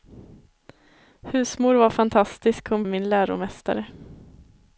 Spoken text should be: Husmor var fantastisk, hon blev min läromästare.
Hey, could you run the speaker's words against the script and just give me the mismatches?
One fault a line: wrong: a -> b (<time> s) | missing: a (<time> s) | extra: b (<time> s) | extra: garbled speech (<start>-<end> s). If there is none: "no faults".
missing: blev (2.8 s)